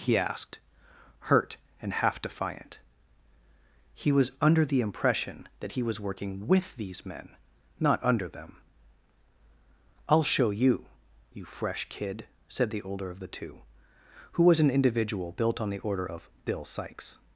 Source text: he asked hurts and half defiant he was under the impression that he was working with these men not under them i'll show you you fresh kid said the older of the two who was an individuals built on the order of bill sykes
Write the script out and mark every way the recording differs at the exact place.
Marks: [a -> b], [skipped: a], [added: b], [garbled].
he asked [hurts -> hurt] and half defiant he was under the impression that he was working with these men not under them i'll show you you fresh kid said the older of the two who was an [individuals -> individual] built on the order of bill sykes